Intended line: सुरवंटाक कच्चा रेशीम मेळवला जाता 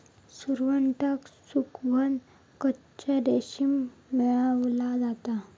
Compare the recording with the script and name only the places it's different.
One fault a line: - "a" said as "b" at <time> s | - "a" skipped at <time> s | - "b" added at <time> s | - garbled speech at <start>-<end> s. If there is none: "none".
- "सुकवन" added at 1.5 s